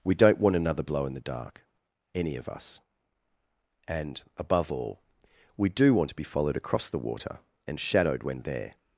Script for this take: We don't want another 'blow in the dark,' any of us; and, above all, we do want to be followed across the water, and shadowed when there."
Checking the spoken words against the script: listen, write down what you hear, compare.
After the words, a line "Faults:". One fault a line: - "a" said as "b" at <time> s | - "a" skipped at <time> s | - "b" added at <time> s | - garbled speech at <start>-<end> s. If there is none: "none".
We don't want another 'blow in the dark,' any of us; and, above all, we do want to be followed across the water, and shadowed when there."
Faults:
none